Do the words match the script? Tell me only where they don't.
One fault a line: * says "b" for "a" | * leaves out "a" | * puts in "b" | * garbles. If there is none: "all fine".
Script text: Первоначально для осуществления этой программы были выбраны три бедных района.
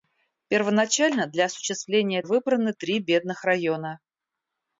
* leaves out "этой программы были"